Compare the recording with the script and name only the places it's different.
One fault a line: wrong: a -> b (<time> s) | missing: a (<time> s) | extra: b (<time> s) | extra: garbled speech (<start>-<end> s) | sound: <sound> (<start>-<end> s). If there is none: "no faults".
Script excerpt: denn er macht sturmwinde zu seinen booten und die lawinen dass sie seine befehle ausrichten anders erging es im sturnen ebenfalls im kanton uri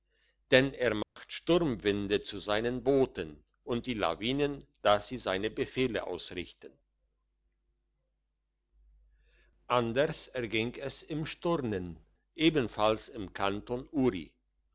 sound: dropout (1.0-1.2 s)